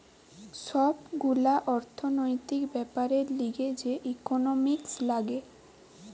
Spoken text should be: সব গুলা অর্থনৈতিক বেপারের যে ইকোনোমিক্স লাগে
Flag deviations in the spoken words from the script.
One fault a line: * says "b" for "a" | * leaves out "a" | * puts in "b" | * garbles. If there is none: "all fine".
* puts in "লিগে"